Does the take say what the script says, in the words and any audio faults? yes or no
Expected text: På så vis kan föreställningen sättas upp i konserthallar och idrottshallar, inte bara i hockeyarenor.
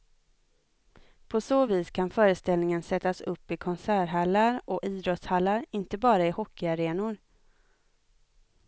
yes